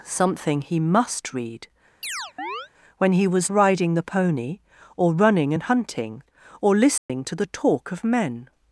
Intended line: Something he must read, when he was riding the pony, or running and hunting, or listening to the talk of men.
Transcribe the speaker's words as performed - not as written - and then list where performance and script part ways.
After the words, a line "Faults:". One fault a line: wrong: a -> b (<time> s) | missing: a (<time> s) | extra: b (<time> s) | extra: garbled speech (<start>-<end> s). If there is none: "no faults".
Something he must read, when he was riding the pony, or running and hunting, or listening to the talk of men.
Faults:
no faults